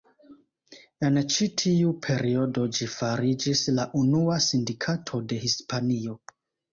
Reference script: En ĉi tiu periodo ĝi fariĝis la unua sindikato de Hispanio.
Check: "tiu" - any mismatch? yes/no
no